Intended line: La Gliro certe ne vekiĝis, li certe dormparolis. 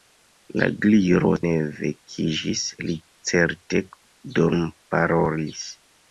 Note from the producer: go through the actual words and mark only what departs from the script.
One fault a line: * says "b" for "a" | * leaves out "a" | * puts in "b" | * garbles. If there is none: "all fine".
* leaves out "certe"